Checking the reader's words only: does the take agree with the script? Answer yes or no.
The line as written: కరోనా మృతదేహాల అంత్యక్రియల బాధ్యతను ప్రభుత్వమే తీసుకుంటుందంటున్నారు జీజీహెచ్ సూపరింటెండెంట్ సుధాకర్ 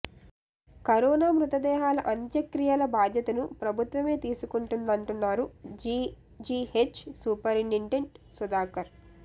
yes